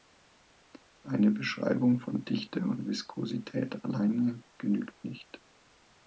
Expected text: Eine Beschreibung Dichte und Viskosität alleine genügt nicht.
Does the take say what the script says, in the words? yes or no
no